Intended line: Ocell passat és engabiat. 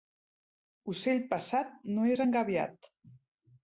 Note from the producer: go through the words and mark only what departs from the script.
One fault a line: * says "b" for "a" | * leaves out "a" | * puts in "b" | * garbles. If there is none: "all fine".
* puts in "no"